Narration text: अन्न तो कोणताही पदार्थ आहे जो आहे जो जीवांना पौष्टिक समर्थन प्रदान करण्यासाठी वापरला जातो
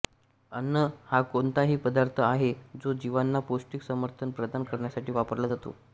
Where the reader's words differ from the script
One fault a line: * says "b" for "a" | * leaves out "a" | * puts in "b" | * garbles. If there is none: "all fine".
* says "हा" for "तो"
* leaves out "आहे जो"